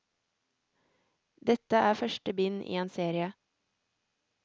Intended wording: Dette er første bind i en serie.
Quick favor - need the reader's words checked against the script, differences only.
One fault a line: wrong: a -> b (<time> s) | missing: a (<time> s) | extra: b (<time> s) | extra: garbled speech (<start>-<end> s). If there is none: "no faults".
no faults